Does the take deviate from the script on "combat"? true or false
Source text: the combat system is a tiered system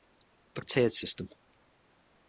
true